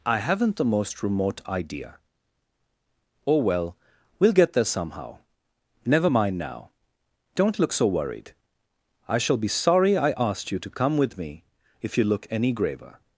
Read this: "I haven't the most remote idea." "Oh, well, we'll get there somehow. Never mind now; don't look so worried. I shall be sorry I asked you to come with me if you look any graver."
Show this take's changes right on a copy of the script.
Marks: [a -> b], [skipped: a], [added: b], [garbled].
"I haven't the most remote idea." "Oh, well, we'll get there somehow. Never mind now; don't look so worried. I shall be sorry I asked you to come with me if you look any graver."